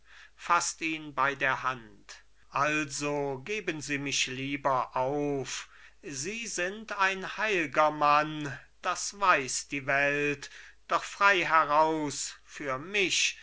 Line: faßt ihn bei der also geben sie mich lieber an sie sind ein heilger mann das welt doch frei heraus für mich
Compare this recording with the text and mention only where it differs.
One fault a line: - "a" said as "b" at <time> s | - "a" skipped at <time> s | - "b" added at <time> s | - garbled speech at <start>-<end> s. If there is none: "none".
- "hand" added at 1.6 s
- "an" said as "auf" at 5.0 s
- "weiß die" added at 9.2 s